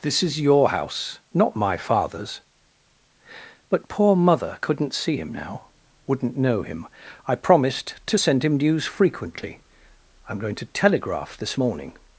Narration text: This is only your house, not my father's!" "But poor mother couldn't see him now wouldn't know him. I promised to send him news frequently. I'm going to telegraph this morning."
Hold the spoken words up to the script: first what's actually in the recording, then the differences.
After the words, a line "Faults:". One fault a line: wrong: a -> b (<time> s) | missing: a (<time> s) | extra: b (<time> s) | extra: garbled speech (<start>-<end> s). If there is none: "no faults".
This is your house, not my father's!" "But poor mother couldn't see him now wouldn't know him. I promised to send him news frequently. I'm going to telegraph this morning."
Faults:
missing: only (0.4 s)